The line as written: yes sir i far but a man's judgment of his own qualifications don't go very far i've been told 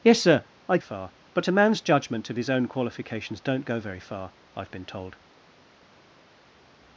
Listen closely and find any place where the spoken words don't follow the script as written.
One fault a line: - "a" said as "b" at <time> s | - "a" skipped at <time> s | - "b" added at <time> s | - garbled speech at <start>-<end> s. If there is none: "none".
none